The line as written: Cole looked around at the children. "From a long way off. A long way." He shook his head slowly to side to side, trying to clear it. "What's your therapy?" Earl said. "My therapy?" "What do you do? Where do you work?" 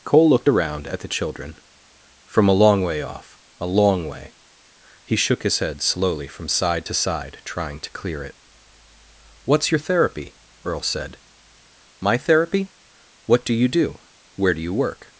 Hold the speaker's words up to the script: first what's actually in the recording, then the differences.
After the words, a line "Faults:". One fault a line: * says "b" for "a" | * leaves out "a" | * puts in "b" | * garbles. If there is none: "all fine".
Cole looked around at the children. "From a long way off. A long way." He shook his head slowly from side to side, trying to clear it. "What's your therapy?" Earl said. "My therapy?" "What do you do? Where do you work?"
Faults:
* says "from" for "to"